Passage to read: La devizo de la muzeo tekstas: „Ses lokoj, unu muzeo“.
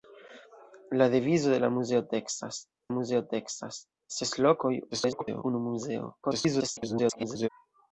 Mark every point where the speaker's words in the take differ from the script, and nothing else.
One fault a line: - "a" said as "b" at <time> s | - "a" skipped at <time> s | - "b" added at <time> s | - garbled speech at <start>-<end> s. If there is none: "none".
- "muzeo tekstas" added at 3.0 s
- garbled speech at 4.9-5.4 s
- garbled speech at 6.2-7.5 s